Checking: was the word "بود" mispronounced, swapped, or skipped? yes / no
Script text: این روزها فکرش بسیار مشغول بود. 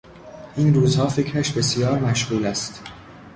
yes